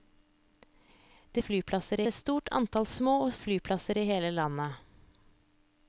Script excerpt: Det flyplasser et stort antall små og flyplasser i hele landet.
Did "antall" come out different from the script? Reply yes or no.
no